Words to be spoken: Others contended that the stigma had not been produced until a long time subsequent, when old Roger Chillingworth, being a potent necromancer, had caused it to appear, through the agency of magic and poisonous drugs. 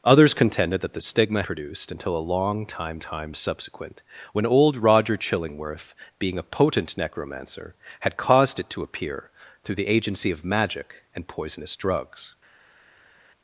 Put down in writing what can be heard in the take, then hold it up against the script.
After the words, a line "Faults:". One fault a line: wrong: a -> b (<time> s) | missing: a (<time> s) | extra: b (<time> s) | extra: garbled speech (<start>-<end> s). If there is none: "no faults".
Others contended that the stigma produced until a long time time subsequent, when old Roger Chillingworth, being a potent necromancer, had caused it to appear, through the agency of magic and poisonous drugs.
Faults:
missing: had not been (1.4 s)
extra: time (3.0 s)